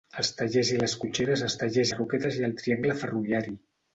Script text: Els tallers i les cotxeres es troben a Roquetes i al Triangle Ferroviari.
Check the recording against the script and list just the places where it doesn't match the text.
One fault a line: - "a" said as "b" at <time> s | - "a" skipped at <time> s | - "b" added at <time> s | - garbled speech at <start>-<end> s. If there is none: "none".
- "troben" said as "tallers" at 1.6 s